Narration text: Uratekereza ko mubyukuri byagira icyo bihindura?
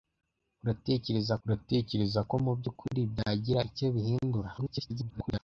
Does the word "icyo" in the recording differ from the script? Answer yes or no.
no